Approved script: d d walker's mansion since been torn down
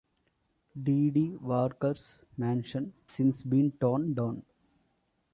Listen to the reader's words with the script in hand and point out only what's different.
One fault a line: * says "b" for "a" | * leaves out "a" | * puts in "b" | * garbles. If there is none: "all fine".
all fine